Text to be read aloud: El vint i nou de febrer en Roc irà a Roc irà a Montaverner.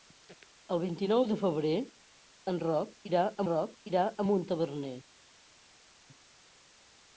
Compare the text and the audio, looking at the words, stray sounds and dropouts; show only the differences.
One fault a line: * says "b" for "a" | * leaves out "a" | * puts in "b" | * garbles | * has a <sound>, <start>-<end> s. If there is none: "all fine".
all fine